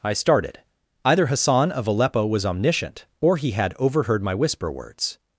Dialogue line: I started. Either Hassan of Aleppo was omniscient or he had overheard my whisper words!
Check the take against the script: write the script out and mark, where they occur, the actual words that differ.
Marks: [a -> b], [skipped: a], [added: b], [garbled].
I started. Either Hassan of Aleppo was omniscient or he had overheard my whisper words!